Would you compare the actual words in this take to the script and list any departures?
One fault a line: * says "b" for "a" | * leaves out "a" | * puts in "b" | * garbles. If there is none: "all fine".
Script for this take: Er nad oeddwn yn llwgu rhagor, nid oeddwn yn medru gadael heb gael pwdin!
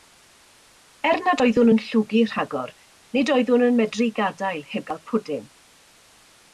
all fine